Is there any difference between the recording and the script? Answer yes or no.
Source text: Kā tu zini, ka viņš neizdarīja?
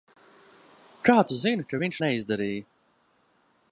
no